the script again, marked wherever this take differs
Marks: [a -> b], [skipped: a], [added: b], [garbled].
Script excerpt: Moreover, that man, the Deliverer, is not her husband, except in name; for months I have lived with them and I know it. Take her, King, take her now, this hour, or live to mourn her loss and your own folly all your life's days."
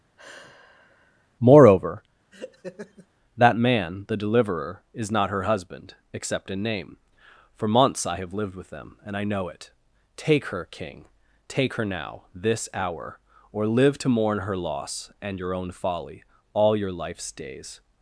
Moreover, that man, the Deliverer, is not her husband, except in name; for months I have lived with them and I know it. Take her, King, take her now, this hour, or live to mourn her loss and your own folly all your life's days."